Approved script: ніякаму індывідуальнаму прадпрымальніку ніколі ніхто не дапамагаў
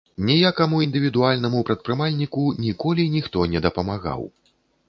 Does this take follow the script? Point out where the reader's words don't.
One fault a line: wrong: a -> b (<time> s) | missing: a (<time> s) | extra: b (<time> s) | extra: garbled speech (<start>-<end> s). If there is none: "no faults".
no faults